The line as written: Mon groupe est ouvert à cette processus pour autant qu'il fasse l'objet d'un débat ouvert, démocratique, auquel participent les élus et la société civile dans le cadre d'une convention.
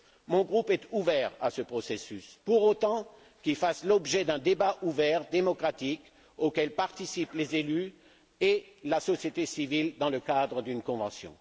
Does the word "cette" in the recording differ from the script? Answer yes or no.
yes